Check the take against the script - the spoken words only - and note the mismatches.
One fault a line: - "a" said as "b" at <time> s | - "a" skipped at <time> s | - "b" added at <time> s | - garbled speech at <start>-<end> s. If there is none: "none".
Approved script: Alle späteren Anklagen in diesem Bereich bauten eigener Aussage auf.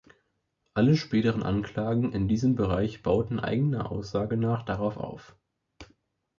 - "nach darauf" added at 4.3 s